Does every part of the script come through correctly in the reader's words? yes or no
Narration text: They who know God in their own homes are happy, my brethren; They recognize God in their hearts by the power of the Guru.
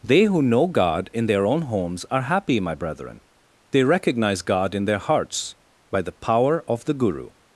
yes